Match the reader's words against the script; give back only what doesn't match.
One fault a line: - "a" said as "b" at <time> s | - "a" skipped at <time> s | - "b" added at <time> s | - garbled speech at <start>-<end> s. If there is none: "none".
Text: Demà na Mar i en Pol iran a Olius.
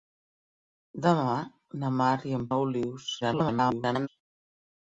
- "Pol iran" skipped at 2.5 s
- garbled speech at 3.2-4.1 s